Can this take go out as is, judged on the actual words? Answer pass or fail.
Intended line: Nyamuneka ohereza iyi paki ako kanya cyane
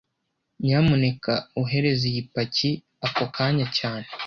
pass